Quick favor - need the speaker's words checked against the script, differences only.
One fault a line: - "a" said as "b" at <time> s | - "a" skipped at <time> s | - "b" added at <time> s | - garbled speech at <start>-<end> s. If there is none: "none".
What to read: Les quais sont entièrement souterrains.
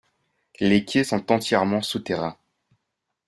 none